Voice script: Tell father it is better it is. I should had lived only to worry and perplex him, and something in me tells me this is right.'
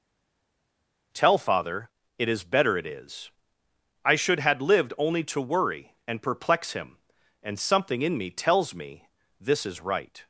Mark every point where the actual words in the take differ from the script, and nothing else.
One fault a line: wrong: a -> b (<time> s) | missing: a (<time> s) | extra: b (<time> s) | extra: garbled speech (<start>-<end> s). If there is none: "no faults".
no faults